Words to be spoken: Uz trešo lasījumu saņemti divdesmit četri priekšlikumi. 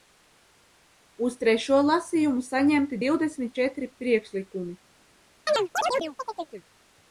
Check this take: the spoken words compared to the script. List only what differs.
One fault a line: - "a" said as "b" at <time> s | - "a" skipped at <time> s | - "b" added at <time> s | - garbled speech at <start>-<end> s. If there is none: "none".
none